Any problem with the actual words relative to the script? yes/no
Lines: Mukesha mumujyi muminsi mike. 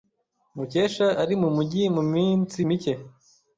yes